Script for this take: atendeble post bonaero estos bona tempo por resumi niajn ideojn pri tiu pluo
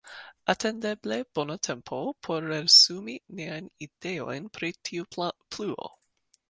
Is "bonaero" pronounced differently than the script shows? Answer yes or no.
yes